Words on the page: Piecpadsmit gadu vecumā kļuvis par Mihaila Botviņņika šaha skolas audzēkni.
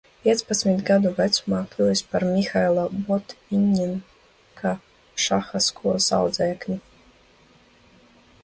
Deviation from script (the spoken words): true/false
false